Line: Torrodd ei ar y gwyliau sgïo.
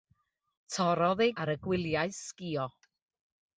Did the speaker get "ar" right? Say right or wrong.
right